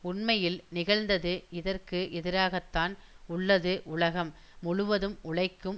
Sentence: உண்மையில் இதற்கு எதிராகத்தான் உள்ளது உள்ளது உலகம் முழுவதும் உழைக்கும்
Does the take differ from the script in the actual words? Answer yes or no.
yes